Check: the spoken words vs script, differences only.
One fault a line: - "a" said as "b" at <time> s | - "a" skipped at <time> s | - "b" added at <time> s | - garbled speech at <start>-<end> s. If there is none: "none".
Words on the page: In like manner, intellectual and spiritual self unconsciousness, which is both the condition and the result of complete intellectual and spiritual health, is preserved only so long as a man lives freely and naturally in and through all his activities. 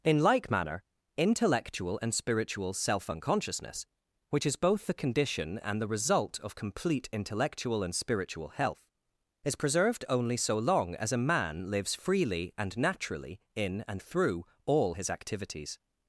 none